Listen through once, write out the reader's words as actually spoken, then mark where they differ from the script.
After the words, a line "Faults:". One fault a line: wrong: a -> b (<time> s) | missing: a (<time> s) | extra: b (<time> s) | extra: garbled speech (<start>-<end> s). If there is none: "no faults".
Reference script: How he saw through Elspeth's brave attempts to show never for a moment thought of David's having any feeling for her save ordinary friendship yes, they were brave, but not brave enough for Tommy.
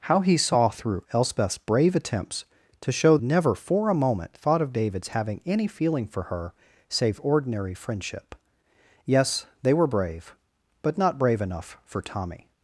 How he saw through Elspeth's brave attempts to show never for a moment thought of David's having any feeling for her save ordinary friendship yes, they were brave, but not brave enough for Tommy.
Faults:
no faults